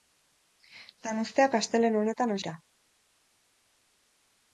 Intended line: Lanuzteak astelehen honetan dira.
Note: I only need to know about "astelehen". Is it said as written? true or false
true